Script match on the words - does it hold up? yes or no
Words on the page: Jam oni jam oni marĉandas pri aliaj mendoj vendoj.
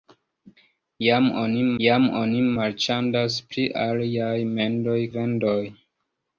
yes